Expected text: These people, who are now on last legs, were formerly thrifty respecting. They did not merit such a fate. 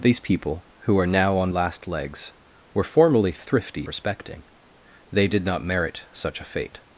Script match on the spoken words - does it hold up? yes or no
yes